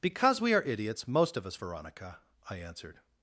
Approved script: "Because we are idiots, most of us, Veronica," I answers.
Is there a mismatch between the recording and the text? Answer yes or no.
yes